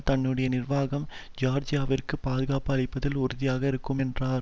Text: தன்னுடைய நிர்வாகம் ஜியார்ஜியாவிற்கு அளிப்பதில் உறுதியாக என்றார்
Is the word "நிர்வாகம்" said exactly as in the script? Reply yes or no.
yes